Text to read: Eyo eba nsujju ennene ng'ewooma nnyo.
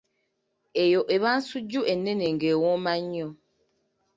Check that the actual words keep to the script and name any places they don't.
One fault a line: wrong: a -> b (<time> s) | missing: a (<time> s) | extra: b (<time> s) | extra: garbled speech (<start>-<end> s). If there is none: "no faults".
no faults